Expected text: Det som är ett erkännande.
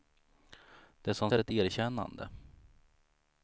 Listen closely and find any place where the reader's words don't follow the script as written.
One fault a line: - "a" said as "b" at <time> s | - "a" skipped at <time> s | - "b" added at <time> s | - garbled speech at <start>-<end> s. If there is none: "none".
none